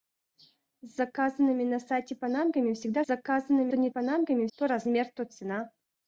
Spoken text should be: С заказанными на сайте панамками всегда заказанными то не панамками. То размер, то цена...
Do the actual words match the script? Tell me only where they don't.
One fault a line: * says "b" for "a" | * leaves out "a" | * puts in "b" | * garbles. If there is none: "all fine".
all fine